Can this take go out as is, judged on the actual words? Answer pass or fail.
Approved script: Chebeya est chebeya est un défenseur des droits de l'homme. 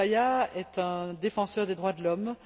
fail